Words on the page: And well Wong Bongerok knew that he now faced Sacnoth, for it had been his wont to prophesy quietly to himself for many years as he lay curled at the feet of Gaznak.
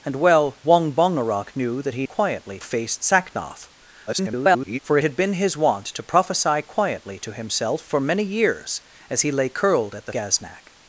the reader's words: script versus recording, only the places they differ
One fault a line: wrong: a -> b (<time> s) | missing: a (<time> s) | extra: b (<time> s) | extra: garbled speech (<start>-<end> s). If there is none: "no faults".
wrong: now -> quietly (2.0 s)
extra: garbled speech (4.1-4.8 s)
missing: feet of (10.1 s)